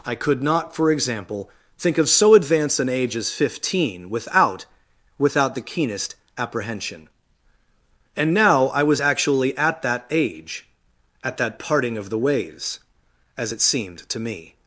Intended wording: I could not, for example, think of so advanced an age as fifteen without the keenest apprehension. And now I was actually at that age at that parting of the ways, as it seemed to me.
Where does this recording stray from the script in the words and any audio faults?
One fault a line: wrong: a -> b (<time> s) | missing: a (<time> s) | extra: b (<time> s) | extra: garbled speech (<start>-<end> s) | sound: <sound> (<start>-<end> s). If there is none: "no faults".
extra: without (5.2 s)